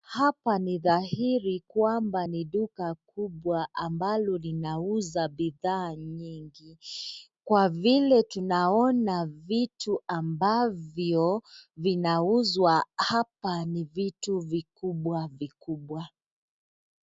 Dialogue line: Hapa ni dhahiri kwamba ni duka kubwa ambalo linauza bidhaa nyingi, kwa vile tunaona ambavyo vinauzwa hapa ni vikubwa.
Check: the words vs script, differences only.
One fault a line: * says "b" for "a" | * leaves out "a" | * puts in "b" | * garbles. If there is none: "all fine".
* puts in "vitu"
* puts in "vitu vikubwa"